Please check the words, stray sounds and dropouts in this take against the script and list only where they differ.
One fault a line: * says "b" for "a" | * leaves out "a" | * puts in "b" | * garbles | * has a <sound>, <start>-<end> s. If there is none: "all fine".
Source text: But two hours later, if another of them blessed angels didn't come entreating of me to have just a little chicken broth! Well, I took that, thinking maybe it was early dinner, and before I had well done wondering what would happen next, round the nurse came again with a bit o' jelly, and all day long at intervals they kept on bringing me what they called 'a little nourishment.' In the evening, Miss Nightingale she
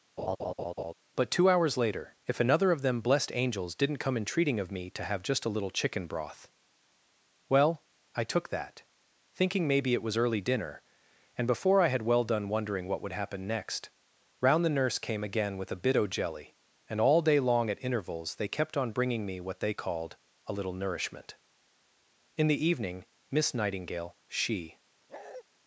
* has a laugh, 0.2-0.9 s
* has a bark, 25.1-25.4 s